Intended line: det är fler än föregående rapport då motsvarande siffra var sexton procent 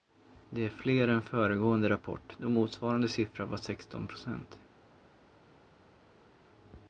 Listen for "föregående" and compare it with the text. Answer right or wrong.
right